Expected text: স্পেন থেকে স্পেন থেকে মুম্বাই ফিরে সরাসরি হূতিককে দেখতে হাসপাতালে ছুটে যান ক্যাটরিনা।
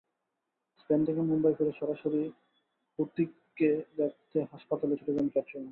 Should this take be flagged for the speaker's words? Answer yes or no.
yes